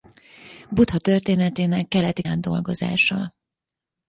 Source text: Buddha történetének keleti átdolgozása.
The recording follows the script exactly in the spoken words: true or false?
true